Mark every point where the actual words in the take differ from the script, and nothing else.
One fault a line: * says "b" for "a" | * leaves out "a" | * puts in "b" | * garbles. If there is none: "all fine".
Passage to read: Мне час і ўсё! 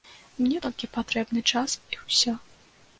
* puts in "толькі патрэбны"